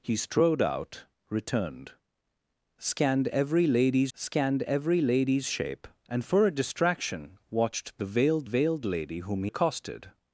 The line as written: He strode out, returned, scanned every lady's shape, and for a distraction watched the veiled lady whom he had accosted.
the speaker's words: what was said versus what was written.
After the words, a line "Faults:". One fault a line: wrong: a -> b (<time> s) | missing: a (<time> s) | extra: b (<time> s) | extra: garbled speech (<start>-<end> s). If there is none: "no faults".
He strode out, returned, scanned every lady's scanned every lady's shape, and for a distraction watched the veiled veiled lady whom he accosted.
Faults:
extra: scanned every lady's (4.1 s)
extra: veiled (8.4 s)
missing: had (9.5 s)